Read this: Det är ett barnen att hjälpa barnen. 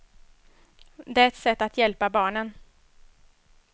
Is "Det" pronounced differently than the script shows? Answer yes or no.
no